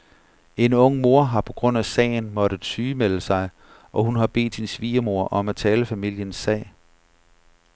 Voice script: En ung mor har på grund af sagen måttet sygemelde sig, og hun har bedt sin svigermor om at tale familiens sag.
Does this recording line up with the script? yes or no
yes